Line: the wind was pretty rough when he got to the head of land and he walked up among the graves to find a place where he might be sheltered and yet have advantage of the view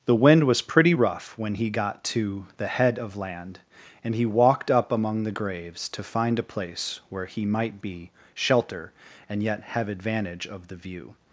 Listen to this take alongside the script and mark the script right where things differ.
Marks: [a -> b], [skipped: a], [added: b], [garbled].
the wind was pretty rough when he got to the head of land and he walked up among the graves to find a place where he might be [sheltered -> shelter] and yet have advantage of the view